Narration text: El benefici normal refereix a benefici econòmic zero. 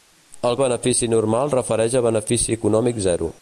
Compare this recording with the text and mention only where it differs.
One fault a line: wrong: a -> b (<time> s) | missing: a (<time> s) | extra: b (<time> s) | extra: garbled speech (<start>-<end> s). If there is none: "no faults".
no faults